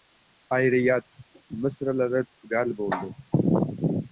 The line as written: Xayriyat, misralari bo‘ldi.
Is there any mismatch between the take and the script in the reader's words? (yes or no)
yes